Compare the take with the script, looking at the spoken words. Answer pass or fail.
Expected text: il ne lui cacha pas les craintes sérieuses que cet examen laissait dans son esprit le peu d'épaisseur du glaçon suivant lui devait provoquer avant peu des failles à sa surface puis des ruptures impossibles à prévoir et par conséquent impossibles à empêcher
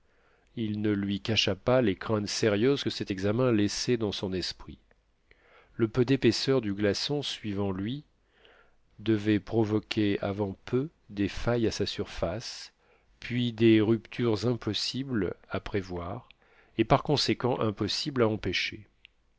pass